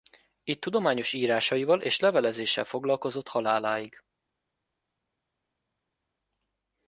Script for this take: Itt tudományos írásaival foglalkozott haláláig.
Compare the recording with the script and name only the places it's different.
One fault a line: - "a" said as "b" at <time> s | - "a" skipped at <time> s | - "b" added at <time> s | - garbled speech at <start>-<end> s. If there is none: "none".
- "és levelezéssel" added at 1.8 s